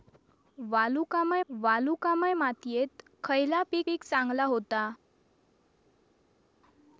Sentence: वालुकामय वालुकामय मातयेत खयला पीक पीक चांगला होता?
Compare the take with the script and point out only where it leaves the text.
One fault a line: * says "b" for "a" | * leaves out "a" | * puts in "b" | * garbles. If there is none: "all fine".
all fine